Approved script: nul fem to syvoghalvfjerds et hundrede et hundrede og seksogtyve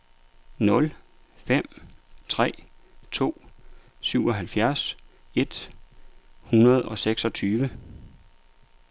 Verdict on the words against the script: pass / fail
fail